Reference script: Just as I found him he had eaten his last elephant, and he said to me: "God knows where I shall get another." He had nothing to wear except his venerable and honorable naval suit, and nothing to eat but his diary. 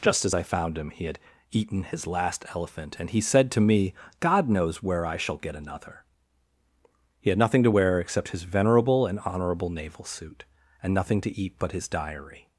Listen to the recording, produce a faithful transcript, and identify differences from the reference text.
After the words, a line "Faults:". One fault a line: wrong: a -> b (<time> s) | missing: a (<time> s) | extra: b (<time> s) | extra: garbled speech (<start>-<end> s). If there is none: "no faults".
Just as I found him he had eaten his last elephant, and he said to me: "God knows where I shall get another." He had nothing to wear except his venerable and honorable naval suit, and nothing to eat but his diary.
Faults:
no faults